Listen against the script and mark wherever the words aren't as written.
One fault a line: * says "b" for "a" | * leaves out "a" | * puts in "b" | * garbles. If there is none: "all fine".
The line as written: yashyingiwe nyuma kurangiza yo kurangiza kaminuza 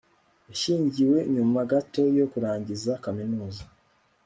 * says "gato" for "kurangiza"